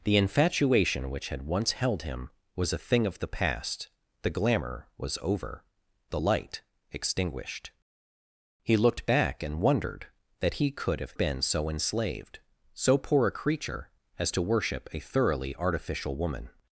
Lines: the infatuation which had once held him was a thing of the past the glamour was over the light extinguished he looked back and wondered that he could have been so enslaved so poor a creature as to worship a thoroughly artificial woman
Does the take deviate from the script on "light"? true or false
false